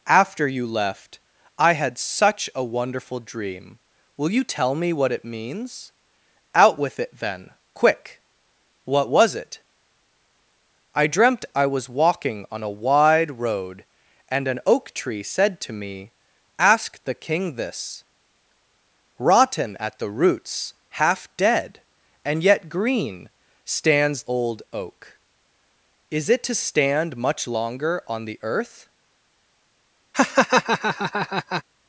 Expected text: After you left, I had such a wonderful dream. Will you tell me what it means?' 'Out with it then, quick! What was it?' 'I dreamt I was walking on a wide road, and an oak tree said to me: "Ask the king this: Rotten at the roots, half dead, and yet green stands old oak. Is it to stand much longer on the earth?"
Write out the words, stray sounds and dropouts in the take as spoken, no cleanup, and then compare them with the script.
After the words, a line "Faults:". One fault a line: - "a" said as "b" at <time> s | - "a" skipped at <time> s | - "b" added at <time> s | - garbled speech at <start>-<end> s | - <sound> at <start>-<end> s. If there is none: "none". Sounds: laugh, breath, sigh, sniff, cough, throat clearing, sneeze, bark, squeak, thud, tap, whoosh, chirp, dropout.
After you left, I had such a wonderful dream. Will you tell me what it means?' 'Out with it then, quick! What was it?' 'I dreamt I was walking on a wide road, and an oak tree said to me: "Ask the king this: Rotten at the roots, half dead, and yet green stands old oak. Is it to stand much longer on the earth?"
Faults:
- laugh at 30.1-31.6 s